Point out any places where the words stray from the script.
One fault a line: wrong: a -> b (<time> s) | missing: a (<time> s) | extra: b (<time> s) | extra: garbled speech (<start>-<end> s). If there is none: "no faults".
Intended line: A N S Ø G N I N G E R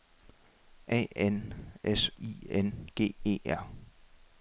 missing: Ø G N (2.1 s)